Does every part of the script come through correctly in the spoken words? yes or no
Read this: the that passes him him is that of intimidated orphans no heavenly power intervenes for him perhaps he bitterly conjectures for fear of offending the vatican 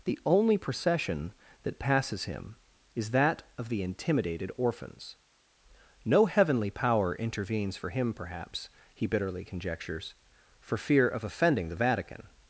no